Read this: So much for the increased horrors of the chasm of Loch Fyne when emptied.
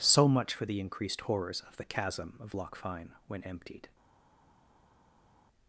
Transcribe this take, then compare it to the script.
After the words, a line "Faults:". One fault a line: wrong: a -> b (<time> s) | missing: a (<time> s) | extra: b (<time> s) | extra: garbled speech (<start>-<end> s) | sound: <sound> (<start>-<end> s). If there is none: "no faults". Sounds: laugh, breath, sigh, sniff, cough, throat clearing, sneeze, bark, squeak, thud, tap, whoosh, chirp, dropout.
So much for the increased horrors of the chasm of Loch Fyne when emptied.
Faults:
no faults